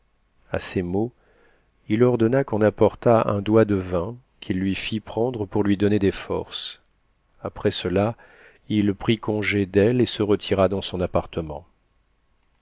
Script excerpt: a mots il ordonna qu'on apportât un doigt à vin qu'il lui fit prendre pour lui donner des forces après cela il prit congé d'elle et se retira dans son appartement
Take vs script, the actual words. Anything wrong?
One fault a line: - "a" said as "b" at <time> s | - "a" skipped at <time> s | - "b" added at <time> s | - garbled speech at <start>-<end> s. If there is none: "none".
- "ces" added at 0.6 s
- "à" said as "de" at 3.6 s